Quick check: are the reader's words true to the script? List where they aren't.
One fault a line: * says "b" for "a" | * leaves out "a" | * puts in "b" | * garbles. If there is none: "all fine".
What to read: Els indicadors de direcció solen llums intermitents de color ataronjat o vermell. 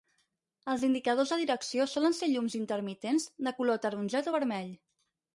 * puts in "ser"